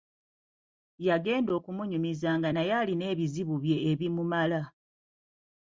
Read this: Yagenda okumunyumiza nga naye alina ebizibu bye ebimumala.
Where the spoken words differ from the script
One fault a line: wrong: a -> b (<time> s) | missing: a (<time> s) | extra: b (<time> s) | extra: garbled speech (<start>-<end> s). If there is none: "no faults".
no faults